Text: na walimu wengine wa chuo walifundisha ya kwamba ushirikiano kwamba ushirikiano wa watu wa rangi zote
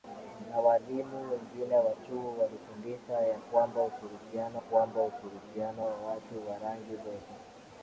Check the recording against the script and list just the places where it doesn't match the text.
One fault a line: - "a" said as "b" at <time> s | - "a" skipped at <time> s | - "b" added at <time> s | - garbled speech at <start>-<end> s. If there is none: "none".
none